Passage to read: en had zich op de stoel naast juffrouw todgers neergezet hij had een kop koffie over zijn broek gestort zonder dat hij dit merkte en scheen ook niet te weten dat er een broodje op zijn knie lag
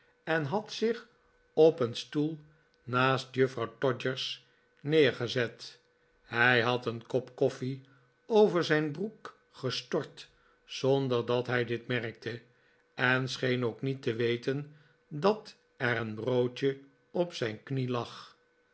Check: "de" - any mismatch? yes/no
yes